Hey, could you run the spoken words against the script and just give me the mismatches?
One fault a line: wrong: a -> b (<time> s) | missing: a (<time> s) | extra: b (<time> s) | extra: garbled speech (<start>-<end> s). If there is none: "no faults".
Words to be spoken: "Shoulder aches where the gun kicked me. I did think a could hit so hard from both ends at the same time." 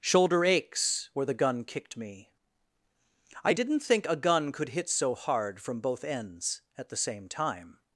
wrong: did -> didn't (3.5 s)
extra: gun (4.1 s)